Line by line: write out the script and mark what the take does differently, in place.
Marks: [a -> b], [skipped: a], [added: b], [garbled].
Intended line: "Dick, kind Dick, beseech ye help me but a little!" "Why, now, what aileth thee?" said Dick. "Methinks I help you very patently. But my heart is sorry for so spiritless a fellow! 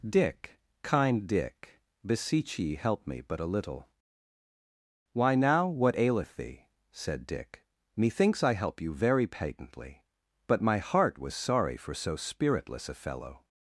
"Dick, kind Dick, beseech ye help me but a little!" "Why, now, what aileth thee?" said Dick. "Methinks I help you very patently. But my heart [is -> was] sorry for so spiritless a fellow!